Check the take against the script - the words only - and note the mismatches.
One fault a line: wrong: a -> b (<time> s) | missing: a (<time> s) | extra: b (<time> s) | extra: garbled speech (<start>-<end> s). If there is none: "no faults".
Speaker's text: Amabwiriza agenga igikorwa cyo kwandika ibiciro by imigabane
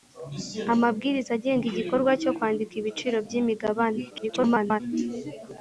extra: garbled speech (4.1-4.8 s)